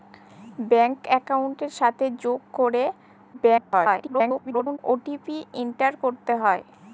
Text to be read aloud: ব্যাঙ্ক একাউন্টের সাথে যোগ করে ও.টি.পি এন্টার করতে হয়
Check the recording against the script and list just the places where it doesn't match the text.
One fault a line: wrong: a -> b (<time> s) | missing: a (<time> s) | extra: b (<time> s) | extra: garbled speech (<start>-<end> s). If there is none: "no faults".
extra: garbled speech (3.3-4.8 s)